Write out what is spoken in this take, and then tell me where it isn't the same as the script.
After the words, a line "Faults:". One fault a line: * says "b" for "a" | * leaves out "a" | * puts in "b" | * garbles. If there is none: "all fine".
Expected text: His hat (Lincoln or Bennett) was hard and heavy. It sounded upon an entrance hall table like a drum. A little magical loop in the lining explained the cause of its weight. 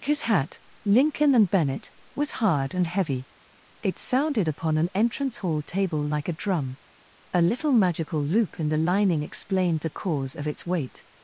His hat (Lincoln and Bennett) was hard and heavy. It sounded upon an entrance hall table like a drum. A little magical loop in the lining explained the cause of its weight.
Faults:
* says "and" for "or"